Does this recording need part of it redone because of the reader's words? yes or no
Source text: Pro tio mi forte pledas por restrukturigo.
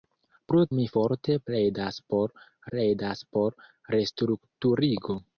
yes